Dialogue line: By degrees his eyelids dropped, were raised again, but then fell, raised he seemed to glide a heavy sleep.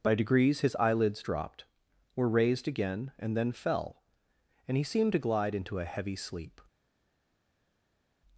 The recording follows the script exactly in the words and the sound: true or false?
false